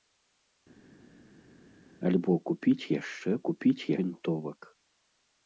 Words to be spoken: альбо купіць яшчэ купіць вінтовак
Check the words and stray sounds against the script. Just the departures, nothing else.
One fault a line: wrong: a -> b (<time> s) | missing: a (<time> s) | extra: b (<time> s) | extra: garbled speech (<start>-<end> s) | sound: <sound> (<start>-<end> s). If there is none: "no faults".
no faults